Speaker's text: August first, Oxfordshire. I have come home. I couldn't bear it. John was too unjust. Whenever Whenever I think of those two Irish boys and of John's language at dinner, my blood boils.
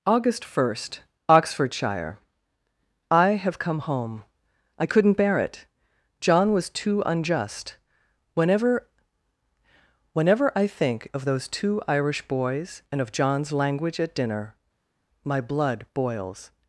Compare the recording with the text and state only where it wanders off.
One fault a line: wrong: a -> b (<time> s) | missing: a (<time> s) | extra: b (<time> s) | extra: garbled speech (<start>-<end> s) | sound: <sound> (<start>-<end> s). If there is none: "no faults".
no faults